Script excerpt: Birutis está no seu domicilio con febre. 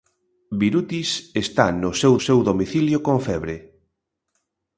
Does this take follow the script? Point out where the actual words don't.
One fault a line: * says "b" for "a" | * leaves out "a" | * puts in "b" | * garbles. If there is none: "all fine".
* puts in "seu"